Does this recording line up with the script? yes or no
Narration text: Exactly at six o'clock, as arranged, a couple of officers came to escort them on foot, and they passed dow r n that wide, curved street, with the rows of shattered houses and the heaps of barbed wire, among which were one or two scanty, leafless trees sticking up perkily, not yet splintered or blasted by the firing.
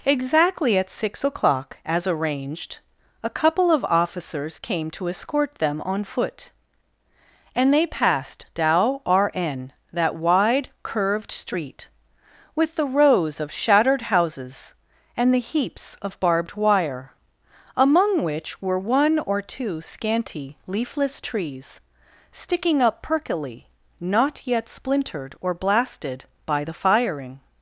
yes